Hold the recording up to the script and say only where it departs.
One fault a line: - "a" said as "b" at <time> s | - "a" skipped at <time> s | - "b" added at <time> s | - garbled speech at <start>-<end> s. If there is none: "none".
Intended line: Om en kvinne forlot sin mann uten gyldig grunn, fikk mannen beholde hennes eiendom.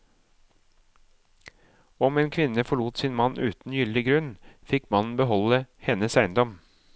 none